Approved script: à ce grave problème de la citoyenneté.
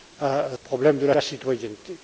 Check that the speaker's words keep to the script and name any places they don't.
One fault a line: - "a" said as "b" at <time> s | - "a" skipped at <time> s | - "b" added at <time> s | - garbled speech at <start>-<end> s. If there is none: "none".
- "ce grave" skipped at 0.5 s
- "la" added at 1.1 s